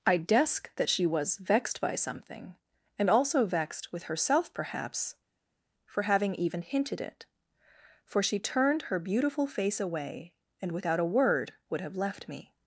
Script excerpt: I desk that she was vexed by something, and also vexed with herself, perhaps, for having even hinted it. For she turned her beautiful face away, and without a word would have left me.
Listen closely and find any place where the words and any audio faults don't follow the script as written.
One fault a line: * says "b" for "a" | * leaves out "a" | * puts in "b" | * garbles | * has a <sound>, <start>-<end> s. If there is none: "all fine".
all fine